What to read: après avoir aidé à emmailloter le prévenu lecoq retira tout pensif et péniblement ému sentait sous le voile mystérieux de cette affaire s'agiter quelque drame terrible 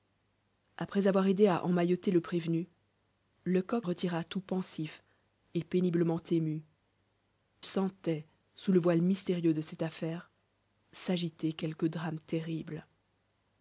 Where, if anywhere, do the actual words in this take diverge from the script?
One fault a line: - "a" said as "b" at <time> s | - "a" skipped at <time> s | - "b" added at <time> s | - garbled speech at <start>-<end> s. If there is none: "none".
none